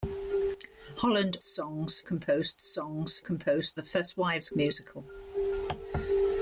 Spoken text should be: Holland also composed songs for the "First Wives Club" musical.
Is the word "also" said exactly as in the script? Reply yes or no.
no